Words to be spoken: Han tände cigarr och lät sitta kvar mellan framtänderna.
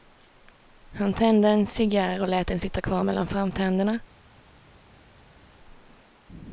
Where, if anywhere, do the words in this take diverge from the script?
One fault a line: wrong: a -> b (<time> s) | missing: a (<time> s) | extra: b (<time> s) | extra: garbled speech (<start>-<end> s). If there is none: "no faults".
extra: en (1.5 s)
extra: den (2.5 s)